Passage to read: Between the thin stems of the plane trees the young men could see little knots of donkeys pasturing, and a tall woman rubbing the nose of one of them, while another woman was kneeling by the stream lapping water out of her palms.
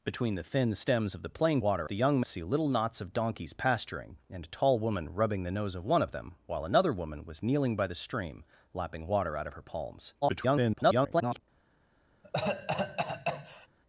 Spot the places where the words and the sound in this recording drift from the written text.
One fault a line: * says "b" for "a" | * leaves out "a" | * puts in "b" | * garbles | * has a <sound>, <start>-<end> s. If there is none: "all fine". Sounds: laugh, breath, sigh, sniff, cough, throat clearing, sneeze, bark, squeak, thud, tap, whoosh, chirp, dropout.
* says "water" for "trees"
* leaves out "men could"
* garbles
* has a cough, 12.2-13.7 s